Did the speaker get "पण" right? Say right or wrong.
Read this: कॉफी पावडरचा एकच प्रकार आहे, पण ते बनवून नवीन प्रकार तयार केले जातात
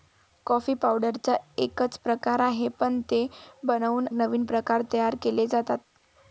right